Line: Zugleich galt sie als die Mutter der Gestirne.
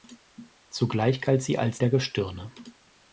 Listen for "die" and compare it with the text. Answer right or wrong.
wrong